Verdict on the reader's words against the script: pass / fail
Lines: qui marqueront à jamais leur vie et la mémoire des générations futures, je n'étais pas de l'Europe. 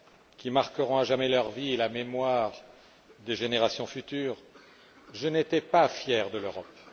fail